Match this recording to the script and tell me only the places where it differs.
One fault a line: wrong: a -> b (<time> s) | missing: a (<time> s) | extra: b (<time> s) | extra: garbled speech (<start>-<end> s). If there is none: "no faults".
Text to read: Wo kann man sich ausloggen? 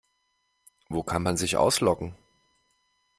no faults